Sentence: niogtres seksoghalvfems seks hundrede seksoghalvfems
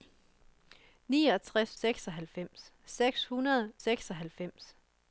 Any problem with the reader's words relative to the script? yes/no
no